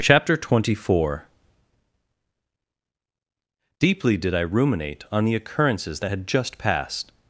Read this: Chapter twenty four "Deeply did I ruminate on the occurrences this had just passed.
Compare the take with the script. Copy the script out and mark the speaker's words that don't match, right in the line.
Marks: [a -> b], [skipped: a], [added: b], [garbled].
Chapter twenty four "Deeply did I ruminate on the occurrences [this -> that] had just passed.